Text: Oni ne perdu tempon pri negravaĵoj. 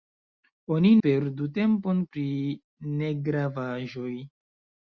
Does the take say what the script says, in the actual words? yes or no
no